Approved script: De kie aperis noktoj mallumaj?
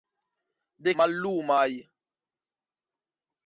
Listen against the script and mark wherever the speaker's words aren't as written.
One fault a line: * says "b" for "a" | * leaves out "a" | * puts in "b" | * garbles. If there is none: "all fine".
* leaves out "kie aperis noktoj"